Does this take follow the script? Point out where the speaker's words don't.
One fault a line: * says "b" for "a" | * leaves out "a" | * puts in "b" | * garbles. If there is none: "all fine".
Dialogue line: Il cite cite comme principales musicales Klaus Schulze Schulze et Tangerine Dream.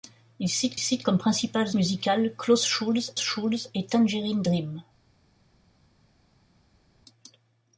all fine